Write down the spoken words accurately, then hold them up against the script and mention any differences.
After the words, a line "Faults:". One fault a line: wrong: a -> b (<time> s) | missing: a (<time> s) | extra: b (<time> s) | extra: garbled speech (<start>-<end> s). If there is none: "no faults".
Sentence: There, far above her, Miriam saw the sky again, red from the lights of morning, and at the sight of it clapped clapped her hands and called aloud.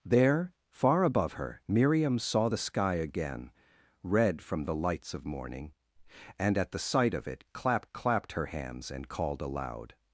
There, far above her, Miriam saw the sky again, red from the lights of morning, and at the sight of it clapped clapped her hands and called aloud.
Faults:
no faults